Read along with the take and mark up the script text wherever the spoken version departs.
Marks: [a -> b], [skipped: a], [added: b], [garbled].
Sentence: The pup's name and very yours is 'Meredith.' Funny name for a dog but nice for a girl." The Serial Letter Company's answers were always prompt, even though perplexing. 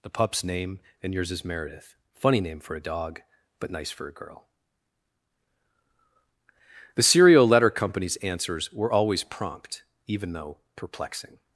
The pup's name and [skipped: very] yours is 'Meredith.' Funny name for a dog but nice for a girl." The Serial Letter Company's answers were always prompt, even though perplexing.